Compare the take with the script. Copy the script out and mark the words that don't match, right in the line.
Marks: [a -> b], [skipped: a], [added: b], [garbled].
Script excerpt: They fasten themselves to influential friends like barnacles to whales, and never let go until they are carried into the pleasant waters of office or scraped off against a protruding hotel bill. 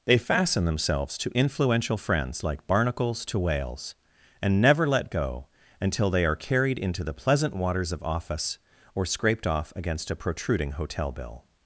They fasten themselves to influential friends like barnacles to whales, and never let go until they are carried into the pleasant waters of office or scraped off against a protruding hotel bill.